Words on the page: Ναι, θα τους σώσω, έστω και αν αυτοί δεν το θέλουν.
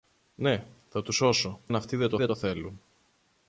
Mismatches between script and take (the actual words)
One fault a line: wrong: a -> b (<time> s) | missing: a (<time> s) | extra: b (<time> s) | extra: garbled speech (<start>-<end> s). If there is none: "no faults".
wrong: έστω και αν αυτοί -> αν αυτοί δεν το (1.7 s)